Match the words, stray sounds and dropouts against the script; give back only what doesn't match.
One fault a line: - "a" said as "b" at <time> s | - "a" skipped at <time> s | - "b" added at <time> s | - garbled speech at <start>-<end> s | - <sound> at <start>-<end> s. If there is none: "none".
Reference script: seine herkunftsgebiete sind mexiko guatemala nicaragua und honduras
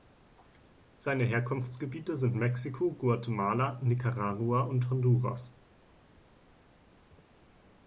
none